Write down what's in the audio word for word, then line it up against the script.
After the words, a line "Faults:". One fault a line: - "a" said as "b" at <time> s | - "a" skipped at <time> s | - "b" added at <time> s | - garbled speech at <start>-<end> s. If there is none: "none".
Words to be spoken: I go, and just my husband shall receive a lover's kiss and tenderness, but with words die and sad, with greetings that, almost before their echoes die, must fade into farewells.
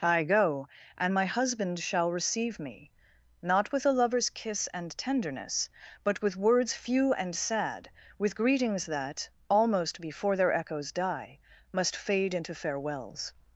I go, and my husband shall receive me, not with a lover's kiss and tenderness, but with words few and sad, with greetings that, almost before their echoes die, must fade into farewells.
Faults:
- "just" skipped at 1.1 s
- "me not with" added at 2.6 s
- "die" said as "few" at 6.7 s